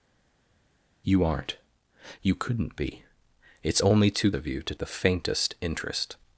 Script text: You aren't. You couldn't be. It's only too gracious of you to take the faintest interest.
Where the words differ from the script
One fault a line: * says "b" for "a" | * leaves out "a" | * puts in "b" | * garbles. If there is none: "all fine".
* leaves out "gracious"
* leaves out "take"